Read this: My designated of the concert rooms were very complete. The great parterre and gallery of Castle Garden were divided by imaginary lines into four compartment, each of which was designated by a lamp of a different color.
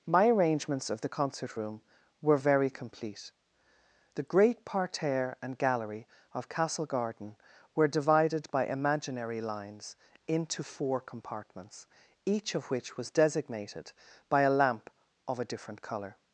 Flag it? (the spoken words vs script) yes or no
yes